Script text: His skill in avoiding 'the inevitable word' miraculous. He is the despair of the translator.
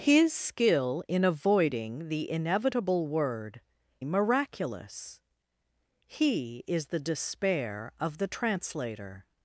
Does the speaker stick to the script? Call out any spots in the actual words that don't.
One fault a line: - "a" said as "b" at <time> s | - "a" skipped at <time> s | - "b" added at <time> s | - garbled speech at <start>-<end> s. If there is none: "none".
none